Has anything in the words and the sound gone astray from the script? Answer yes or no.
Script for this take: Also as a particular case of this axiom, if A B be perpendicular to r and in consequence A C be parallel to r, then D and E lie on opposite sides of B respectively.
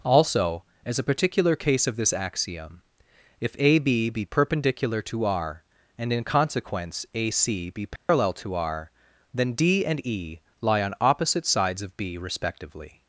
yes